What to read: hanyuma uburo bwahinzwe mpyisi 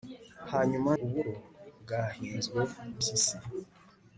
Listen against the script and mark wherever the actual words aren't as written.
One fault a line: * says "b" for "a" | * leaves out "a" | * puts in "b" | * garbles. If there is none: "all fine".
all fine